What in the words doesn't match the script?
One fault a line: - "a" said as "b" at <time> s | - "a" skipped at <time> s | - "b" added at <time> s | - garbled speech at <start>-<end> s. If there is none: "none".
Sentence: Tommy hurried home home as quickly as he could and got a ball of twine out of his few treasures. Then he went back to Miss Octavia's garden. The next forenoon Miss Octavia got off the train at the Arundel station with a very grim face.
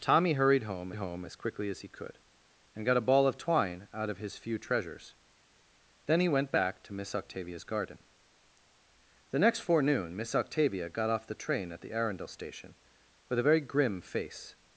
none